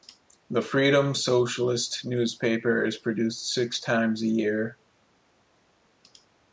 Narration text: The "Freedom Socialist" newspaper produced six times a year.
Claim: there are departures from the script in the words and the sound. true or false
true